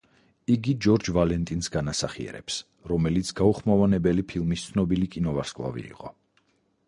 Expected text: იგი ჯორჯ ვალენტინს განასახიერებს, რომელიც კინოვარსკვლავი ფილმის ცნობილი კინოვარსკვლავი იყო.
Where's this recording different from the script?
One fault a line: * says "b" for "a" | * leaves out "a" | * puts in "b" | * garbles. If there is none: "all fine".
* says "გაუხმოვანებელი" for "კინოვარსკვლავი"